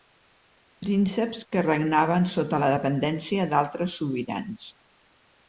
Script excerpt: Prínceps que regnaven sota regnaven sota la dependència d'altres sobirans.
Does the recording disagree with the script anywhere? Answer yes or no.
yes